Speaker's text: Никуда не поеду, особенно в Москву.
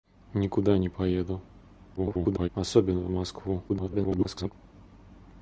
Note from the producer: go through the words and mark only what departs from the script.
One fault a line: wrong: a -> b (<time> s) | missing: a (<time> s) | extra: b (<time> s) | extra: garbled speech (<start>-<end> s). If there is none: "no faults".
extra: garbled speech (2.0-2.5 s)
extra: garbled speech (3.7-4.5 s)